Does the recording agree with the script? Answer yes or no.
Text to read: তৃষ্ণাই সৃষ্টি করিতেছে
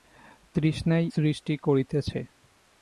yes